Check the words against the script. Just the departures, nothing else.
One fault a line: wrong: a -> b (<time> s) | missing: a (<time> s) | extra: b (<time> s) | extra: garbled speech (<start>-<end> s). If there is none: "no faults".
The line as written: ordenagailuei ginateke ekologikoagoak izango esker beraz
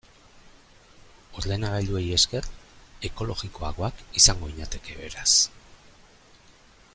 wrong: ginateke -> esker (2.2 s)
wrong: esker -> ginateke (4.5 s)